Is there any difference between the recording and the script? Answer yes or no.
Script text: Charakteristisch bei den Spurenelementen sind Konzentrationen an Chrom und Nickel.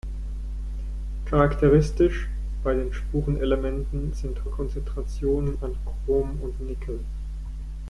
no